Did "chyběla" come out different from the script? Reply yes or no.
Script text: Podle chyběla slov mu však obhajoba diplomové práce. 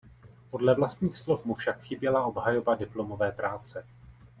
yes